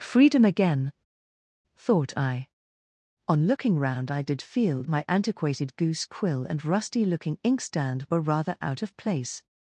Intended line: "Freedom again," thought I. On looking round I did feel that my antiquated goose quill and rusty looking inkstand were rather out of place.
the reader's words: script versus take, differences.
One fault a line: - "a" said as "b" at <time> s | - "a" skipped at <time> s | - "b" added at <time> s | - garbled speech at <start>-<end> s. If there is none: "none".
- "that" skipped at 4.8 s